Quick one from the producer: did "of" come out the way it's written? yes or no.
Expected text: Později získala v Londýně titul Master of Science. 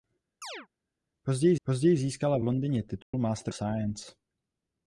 no